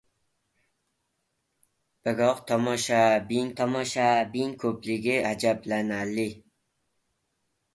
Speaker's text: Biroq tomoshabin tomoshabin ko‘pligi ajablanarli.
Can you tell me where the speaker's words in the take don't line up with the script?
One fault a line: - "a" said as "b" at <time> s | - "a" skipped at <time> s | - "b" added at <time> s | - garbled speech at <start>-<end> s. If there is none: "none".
none